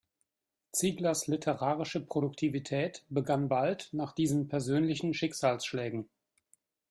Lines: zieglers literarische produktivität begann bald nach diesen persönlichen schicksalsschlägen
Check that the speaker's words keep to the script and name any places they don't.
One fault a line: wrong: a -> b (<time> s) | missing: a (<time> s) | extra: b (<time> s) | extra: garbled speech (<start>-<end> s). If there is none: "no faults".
no faults